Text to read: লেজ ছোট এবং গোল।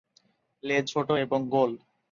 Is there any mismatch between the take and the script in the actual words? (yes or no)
no